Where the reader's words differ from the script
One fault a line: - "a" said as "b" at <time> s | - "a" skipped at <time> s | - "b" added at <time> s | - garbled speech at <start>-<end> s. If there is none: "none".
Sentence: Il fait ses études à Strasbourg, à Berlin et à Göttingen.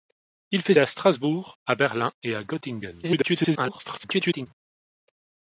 - "ses études" skipped at 0.7 s
- garbled speech at 3.0-4.5 s